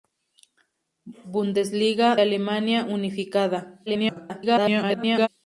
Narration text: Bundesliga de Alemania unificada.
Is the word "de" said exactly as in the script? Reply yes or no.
no